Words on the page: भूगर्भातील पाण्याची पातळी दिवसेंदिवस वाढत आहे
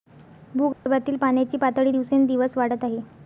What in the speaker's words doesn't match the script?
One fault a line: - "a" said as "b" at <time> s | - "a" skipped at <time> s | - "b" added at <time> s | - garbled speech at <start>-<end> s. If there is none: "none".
none